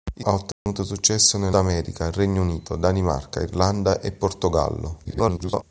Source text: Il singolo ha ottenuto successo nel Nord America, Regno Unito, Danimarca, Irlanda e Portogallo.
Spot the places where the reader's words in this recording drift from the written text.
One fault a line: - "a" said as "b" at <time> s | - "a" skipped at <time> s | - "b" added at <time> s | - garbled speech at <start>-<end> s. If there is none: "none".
- "singolo" skipped at 0.2 s
- "Nord" skipped at 1.5 s
- garbled speech at 5.0-5.6 s